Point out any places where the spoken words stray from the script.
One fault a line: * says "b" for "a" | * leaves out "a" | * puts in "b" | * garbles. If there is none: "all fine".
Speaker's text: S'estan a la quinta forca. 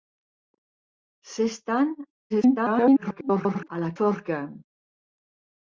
* garbles
* leaves out "quinta"